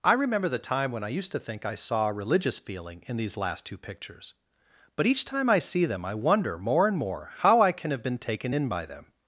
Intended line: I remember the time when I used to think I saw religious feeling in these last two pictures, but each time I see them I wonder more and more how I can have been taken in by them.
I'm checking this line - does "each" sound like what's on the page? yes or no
yes